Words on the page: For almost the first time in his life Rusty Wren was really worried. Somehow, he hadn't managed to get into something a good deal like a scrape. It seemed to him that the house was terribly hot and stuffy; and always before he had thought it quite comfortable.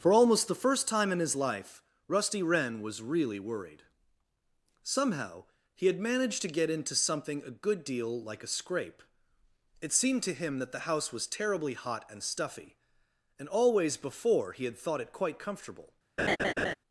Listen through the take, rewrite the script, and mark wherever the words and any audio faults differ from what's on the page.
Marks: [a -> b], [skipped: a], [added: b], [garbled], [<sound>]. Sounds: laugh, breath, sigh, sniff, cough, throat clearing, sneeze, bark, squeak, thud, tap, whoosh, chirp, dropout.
For almost the first time in his life Rusty Wren was really worried. Somehow, he [hadn't -> had] managed to get into something a good deal like a scrape. It seemed to him that the house was terribly hot and stuffy; and always before he had thought it quite comfortable. [laugh]